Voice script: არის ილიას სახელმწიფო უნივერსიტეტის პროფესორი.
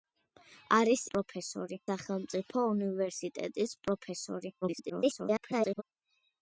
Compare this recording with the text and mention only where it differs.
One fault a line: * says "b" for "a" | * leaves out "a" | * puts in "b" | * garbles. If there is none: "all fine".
* says "პროფესორი" for "ილიას"
* garbles